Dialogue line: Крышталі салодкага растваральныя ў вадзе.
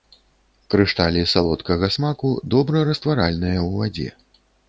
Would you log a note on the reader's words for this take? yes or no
yes